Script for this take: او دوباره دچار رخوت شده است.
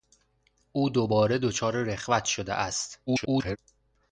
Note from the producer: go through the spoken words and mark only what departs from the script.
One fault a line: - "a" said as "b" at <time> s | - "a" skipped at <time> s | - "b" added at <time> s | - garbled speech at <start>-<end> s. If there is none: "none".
- garbled speech at 3.1-3.6 s